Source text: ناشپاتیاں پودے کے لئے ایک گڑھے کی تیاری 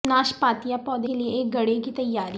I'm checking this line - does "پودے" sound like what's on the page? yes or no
yes